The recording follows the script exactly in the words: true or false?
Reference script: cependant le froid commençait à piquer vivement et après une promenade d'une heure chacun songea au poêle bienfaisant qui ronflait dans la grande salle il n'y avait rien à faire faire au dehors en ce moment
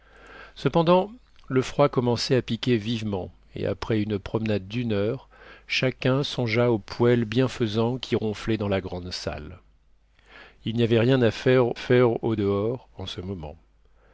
true